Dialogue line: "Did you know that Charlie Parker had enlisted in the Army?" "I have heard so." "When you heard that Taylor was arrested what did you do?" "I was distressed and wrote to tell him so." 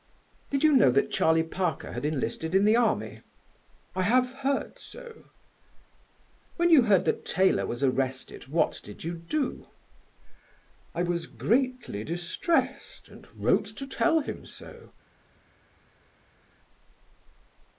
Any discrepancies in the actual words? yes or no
yes